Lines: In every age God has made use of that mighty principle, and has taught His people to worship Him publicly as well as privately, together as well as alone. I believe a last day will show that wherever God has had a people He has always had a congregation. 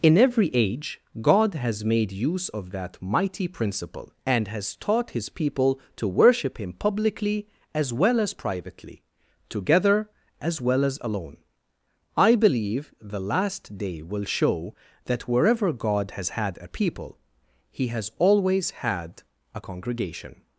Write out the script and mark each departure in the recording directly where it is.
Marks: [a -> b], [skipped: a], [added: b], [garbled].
In every age God has made use of that mighty principle, and has taught His people to worship Him publicly as well as privately, together as well as alone. I believe [a -> the] last day will show that wherever God has had a people He has always had a congregation.